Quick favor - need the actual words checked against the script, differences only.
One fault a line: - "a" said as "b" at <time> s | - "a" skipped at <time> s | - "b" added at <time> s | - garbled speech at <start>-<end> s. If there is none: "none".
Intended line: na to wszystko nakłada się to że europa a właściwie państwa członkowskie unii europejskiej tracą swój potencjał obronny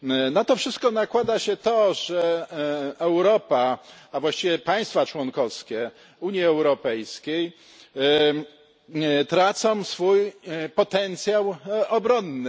none